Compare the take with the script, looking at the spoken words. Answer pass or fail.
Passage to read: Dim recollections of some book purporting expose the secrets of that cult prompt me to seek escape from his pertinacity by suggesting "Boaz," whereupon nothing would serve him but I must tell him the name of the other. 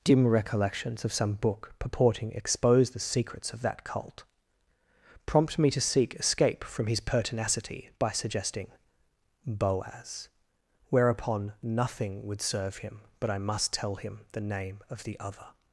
pass